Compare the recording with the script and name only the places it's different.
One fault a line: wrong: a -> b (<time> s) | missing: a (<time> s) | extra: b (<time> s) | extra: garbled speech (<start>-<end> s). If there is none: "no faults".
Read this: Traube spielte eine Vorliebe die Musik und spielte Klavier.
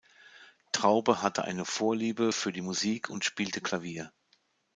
wrong: spielte -> hatte (1.2 s)
extra: für (2.3 s)